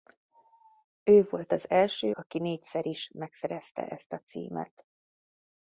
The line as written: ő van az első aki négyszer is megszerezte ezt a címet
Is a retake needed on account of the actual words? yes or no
yes